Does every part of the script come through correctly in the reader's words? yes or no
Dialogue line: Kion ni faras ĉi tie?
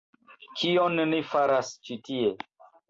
yes